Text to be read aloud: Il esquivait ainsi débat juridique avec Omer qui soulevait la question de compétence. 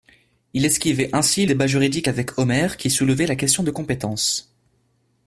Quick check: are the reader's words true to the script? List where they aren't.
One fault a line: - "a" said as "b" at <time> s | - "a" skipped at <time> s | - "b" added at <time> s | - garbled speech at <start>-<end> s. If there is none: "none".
none